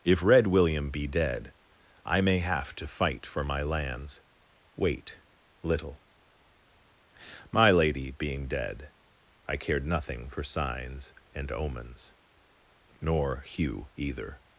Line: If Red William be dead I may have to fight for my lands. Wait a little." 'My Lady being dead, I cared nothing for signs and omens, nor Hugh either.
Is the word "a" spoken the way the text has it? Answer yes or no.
no